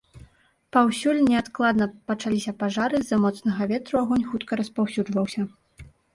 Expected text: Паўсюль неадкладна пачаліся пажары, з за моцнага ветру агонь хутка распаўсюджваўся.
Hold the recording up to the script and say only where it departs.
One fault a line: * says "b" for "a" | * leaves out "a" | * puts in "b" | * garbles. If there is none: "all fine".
all fine